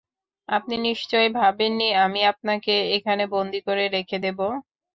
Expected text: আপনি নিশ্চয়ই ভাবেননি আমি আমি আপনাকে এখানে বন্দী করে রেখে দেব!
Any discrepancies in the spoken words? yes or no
yes